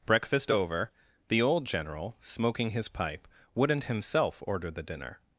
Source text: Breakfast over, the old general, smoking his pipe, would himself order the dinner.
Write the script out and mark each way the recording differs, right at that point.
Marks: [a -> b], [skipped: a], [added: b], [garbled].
Breakfast over, the old general, smoking his pipe, [would -> wouldn't] himself order the dinner.